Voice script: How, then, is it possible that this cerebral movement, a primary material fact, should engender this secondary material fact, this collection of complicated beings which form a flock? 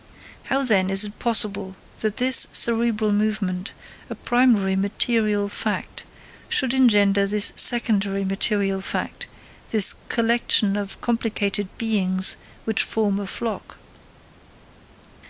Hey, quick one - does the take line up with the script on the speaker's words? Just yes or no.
yes